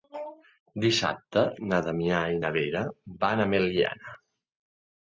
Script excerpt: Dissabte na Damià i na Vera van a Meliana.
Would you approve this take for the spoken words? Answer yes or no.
yes